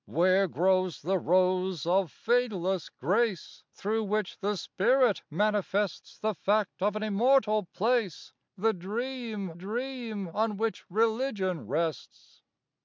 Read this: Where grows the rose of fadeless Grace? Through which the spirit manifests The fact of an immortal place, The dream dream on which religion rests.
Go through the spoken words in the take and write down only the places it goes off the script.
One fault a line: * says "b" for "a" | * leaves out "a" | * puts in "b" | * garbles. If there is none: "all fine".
all fine